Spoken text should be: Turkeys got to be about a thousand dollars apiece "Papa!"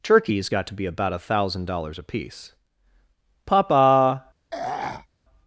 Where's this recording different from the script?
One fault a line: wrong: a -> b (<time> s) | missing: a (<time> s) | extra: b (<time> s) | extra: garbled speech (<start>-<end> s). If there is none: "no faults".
no faults